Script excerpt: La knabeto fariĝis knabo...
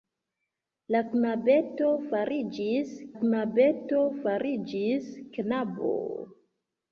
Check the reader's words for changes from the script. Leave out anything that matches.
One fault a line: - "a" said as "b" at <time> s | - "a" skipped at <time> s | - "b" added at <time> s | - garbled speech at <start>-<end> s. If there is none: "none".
- "knabeto fariĝis" added at 3.2 s